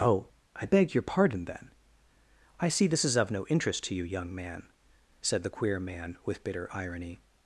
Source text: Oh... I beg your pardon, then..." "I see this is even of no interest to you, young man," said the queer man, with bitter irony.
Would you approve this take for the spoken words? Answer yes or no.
no